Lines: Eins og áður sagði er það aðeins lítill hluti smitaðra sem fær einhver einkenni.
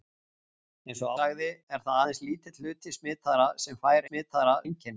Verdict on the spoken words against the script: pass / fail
fail